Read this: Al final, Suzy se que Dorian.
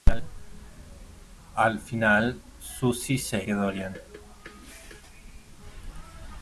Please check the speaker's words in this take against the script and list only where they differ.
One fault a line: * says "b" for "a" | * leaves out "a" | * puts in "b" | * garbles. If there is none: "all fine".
all fine